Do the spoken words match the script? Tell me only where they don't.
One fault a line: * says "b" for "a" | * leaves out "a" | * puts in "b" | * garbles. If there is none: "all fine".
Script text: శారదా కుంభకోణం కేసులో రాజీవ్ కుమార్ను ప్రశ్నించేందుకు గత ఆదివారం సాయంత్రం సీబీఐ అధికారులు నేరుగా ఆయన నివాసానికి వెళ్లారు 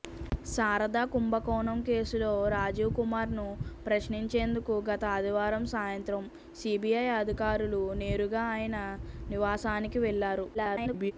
* garbles